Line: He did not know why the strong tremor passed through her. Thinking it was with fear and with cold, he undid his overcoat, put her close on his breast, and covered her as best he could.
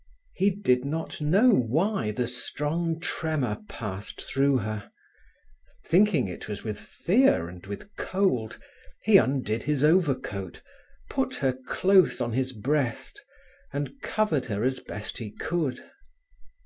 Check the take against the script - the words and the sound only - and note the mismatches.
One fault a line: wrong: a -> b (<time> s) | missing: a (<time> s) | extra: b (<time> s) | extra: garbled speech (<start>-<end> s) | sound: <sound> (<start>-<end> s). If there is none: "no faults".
no faults